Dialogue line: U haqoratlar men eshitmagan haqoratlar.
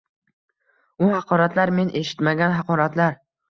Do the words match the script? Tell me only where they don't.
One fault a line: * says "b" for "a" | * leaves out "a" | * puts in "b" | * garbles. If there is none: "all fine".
all fine